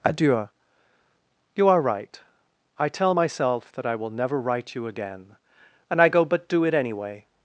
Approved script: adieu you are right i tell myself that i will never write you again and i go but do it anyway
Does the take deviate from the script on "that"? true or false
false